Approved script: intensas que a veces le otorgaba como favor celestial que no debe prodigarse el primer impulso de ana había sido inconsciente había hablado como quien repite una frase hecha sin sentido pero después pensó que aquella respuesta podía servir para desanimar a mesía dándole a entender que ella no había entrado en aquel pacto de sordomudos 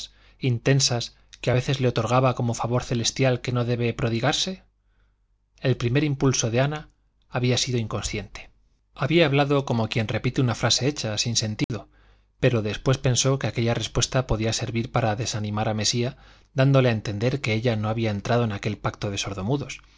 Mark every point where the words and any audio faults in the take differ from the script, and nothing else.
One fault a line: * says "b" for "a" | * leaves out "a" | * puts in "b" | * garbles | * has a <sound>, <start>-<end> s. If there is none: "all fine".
* has a dropout, 11.6-11.7 s